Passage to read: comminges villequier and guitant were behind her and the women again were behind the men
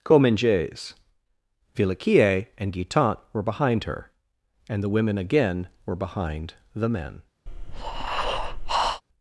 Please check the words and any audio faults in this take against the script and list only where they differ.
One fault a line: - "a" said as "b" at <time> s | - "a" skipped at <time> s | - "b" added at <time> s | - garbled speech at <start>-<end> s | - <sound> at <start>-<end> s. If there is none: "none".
- breath at 7.5-9.0 s